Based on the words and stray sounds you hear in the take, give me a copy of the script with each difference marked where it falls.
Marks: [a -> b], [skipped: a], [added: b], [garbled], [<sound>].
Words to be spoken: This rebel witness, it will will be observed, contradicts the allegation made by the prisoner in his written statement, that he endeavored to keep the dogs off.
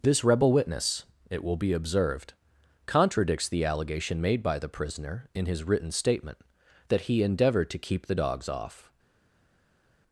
This rebel witness, it will [skipped: will] be observed, contradicts the allegation made by the prisoner in his written statement, that he endeavored to keep the dogs off.